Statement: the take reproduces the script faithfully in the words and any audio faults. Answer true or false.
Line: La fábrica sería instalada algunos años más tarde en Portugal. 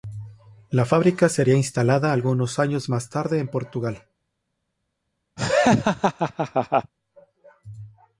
false